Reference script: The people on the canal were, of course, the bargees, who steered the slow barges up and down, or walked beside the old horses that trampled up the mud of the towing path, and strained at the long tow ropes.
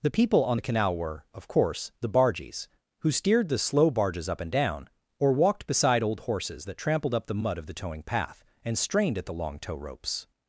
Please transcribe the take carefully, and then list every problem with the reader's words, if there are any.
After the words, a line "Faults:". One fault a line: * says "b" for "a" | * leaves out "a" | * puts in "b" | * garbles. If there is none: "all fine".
The people on the canal were, of course, the bargees, who steered the slow barges up and down, or walked beside old horses that trampled up the mud of the towing path, and strained at the long tow ropes.
Faults:
* leaves out "the"